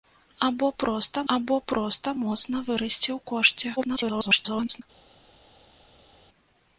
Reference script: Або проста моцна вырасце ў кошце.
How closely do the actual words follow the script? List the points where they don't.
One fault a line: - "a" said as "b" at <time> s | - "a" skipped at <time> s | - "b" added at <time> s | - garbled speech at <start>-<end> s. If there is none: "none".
- "або проста" added at 1.3 s
- garbled speech at 3.8-4.8 s